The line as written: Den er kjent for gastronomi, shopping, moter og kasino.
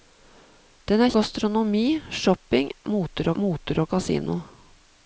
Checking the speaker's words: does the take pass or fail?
fail